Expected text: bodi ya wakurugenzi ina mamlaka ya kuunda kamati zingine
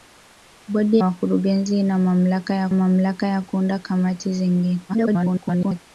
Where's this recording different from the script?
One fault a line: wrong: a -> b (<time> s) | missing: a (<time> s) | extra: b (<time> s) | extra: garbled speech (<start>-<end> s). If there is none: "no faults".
missing: ya (1.0 s)
extra: mamlaka ya (2.7 s)
extra: garbled speech (4.9-5.8 s)